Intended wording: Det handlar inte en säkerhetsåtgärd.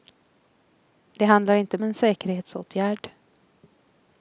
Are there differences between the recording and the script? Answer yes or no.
no